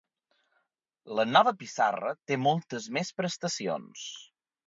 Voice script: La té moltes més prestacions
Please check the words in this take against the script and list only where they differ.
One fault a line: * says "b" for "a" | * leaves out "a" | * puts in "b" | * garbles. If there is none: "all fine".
* puts in "nova pissarra"